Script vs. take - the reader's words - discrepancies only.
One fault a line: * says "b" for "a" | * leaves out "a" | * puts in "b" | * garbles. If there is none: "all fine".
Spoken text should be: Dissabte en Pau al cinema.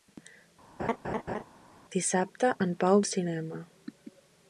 all fine